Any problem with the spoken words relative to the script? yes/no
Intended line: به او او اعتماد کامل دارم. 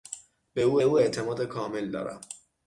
no